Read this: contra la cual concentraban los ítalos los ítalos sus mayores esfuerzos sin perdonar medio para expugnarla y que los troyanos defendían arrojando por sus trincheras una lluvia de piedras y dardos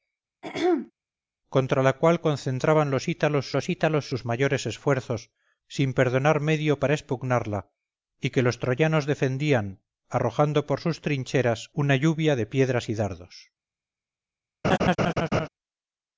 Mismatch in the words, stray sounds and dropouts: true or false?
true